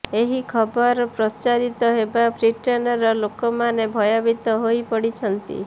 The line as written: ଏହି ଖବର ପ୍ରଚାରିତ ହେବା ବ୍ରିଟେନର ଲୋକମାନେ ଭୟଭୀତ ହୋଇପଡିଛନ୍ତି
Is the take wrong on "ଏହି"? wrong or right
right